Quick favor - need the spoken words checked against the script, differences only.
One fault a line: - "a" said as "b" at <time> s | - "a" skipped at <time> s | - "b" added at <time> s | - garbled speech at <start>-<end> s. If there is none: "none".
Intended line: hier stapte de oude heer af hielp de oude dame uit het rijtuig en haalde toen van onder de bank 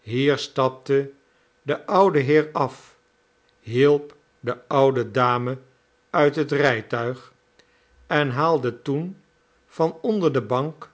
none